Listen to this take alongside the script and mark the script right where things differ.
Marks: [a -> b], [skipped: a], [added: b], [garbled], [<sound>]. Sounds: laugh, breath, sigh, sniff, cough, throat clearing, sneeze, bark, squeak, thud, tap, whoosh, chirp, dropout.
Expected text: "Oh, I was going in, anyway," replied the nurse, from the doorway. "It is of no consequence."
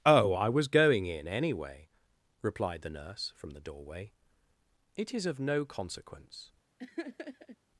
"Oh, I was going in, anyway," replied the nurse, from the doorway. "It is of no consequence." [laugh]